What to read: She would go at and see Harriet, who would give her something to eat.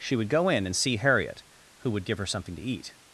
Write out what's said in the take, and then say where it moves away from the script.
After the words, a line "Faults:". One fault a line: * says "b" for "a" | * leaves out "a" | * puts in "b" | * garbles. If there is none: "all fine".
She would go in and see Harriet, who would give her something to eat.
Faults:
* says "in" for "at"